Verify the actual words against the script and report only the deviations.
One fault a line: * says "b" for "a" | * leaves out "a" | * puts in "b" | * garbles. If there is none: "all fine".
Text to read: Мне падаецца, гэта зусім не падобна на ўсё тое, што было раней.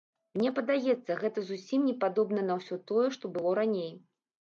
all fine